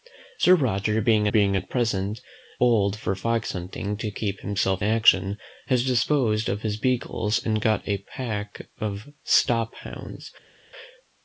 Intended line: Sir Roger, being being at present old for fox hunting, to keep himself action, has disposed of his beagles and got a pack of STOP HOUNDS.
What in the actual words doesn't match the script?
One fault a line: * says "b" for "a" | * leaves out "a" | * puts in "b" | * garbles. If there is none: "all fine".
all fine